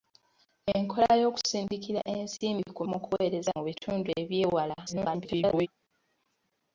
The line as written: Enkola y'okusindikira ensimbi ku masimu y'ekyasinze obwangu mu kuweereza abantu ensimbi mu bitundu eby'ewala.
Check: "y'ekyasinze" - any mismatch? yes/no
yes